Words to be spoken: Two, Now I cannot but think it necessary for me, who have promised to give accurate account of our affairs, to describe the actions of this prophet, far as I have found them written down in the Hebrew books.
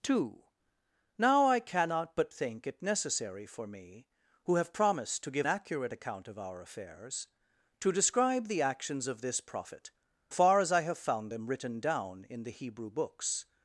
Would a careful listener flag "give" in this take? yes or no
no